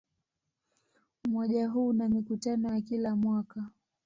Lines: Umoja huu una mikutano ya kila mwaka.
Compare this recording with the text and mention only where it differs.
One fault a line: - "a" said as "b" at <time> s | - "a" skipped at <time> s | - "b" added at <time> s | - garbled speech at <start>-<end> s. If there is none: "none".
none